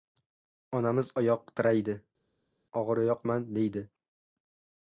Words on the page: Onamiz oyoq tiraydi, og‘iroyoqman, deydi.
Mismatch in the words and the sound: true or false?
false